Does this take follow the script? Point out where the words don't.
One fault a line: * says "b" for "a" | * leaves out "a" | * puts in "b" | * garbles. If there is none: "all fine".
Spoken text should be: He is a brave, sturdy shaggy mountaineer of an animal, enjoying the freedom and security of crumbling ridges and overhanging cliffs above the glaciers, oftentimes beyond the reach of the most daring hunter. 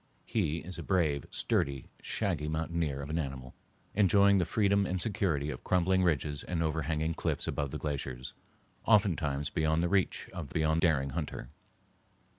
* says "beyond" for "most"